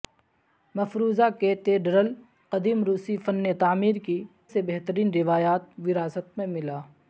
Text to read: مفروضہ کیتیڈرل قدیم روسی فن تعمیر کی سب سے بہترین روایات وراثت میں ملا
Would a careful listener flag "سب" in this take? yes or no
yes